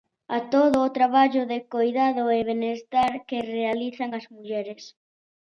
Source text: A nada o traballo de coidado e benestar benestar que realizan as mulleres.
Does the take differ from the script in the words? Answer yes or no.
yes